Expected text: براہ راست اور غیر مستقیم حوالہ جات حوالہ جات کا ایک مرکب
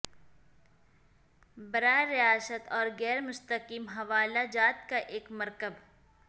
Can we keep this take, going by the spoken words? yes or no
no